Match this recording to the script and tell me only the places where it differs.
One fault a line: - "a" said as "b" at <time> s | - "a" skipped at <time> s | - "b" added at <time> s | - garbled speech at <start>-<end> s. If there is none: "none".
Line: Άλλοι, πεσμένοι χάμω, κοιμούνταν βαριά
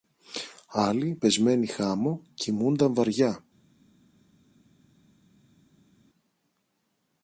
none